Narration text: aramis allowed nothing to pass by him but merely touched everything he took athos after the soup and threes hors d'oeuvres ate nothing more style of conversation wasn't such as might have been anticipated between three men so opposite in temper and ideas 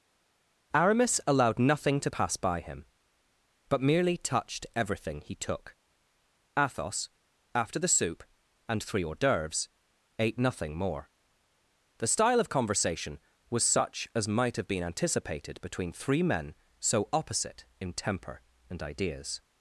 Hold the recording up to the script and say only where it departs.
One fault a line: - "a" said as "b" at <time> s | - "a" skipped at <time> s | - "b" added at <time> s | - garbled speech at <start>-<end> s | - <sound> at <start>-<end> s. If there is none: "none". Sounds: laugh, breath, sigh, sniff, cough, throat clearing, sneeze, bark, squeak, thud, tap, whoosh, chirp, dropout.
- "threes" said as "three" at 8.8 s
- "the" added at 12.0 s
- "wasn't" said as "was" at 13.5 s